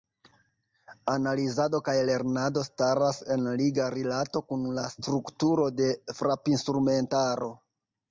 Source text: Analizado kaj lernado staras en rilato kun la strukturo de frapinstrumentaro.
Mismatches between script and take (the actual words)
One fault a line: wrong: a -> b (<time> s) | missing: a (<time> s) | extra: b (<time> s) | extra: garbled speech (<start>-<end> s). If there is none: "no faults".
extra: liga (3.6 s)